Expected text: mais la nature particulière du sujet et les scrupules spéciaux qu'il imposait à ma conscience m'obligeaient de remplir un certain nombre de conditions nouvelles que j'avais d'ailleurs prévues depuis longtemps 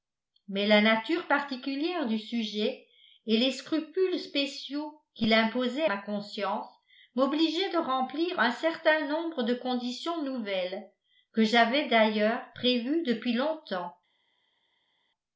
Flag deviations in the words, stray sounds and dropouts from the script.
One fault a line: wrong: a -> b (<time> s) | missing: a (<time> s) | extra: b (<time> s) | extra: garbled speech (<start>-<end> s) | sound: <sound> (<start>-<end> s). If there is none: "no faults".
missing: à (5.8 s)